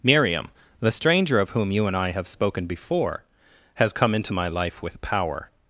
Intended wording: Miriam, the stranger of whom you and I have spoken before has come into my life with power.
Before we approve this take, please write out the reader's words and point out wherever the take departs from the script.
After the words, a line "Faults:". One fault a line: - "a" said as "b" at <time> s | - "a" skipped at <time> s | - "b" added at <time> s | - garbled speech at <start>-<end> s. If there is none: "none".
Miriam, the stranger of whom you and I have spoken before has come into my life with power.
Faults:
none